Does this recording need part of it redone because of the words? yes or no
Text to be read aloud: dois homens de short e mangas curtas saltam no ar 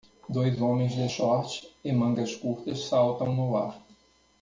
no